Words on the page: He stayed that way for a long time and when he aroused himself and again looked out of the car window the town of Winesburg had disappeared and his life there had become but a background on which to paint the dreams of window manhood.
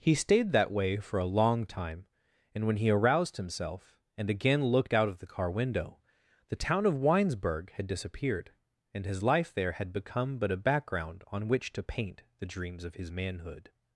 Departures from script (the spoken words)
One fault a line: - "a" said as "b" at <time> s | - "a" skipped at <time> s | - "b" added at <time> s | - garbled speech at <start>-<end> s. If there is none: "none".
- "window" said as "his" at 12.9 s